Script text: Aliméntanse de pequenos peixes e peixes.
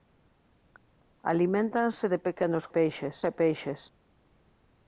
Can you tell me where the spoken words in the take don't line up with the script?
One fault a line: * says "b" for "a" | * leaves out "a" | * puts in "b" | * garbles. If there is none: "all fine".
all fine